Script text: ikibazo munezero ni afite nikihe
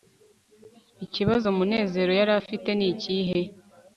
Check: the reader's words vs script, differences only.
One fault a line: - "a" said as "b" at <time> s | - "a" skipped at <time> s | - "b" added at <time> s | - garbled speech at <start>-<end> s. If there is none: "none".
- "ni" said as "yari" at 2.2 s